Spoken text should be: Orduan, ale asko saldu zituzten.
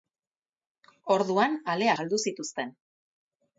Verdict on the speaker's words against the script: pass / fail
fail